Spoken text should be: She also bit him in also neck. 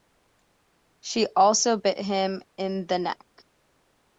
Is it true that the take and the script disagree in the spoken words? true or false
true